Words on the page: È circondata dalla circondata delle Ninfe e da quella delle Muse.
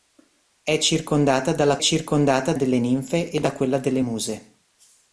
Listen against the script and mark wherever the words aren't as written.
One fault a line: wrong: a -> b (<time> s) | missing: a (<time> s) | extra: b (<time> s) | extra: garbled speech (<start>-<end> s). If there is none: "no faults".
no faults